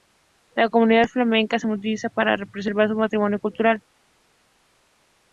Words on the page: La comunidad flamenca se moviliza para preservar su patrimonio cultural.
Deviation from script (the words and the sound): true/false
false